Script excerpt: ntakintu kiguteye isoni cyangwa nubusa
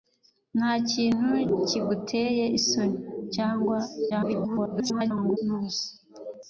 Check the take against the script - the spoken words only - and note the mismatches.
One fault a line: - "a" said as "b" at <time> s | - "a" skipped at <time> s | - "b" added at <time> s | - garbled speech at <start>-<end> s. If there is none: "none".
- garbled speech at 4.1-5.4 s